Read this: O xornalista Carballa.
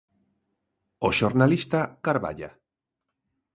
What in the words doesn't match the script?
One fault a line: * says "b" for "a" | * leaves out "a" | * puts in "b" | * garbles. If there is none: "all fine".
all fine